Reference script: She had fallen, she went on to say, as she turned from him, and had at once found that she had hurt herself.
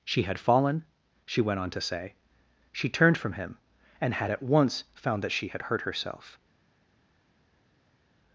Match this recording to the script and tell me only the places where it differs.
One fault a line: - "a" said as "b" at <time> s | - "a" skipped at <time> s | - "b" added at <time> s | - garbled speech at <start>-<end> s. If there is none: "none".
- "as" skipped at 2.1 s